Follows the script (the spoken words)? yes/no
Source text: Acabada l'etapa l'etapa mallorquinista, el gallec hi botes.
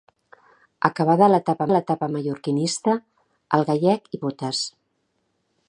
yes